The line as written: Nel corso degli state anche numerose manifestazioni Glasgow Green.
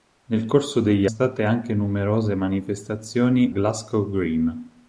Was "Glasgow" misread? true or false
false